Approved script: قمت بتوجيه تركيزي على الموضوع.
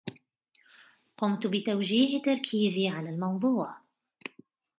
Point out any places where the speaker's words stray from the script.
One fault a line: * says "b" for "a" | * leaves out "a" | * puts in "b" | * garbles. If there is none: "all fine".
all fine